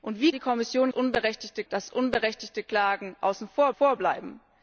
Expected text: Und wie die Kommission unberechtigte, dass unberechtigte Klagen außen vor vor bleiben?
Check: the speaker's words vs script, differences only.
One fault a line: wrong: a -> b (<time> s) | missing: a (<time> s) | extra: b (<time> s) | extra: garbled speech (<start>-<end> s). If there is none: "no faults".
no faults